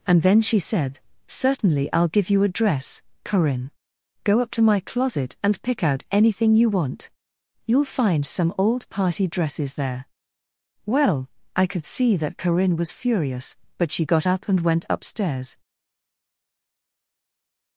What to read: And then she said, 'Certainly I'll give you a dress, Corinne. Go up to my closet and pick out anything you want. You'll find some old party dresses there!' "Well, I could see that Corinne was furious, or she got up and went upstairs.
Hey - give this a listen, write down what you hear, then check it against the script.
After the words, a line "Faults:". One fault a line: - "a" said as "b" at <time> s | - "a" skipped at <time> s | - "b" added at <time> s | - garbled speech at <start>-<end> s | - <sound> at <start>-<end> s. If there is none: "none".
And then she said, 'Certainly I'll give you a dress, Corinne. Go up to my closet and pick out anything you want. You'll find some old party dresses there!' "Well, I could see that Corinne was furious, but she got up and went upstairs.
Faults:
- "or" said as "but" at 13.8 s